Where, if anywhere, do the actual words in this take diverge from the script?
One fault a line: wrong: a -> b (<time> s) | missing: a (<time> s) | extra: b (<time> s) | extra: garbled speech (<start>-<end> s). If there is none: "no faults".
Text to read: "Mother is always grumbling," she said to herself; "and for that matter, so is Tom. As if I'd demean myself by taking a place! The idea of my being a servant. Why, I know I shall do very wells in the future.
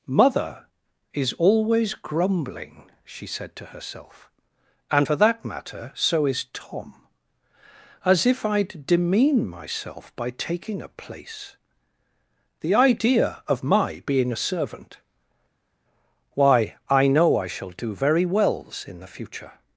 no faults